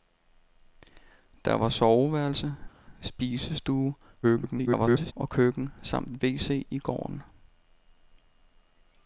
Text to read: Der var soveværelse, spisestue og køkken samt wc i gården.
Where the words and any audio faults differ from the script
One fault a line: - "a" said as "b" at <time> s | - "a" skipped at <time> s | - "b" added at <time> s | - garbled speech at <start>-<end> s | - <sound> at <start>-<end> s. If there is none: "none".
- garbled speech at 4.2-5.1 s